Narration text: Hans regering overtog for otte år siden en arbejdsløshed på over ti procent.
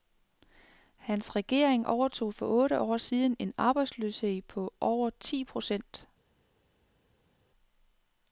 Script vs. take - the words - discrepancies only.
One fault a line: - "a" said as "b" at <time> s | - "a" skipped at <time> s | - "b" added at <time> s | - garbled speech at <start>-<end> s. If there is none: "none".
none